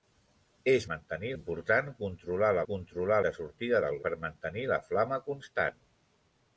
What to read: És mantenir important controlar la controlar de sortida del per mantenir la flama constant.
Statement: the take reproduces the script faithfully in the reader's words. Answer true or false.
true